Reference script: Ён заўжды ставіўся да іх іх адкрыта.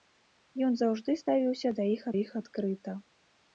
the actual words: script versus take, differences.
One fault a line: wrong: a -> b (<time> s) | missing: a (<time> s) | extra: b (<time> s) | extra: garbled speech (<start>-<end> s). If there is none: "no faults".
no faults